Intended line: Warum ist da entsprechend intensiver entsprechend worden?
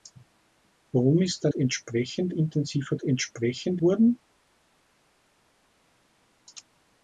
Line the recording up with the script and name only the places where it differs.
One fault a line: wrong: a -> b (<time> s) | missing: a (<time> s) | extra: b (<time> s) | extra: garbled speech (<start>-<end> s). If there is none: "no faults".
no faults